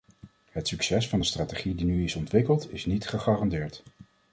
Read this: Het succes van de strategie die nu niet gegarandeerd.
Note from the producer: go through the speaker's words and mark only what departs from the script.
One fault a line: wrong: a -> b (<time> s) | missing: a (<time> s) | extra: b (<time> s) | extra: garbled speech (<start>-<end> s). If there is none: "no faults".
extra: is ontwikkeld is (2.0 s)